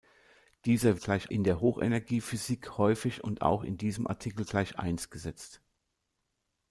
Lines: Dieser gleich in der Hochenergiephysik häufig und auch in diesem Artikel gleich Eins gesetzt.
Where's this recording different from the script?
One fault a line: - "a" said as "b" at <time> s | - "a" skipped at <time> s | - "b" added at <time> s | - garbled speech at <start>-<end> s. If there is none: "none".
none